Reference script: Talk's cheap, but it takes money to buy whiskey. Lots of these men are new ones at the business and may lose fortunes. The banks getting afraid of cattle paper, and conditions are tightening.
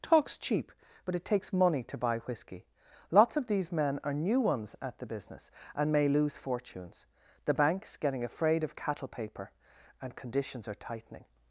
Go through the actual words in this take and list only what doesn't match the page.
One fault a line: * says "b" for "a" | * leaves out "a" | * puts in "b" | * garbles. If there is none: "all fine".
all fine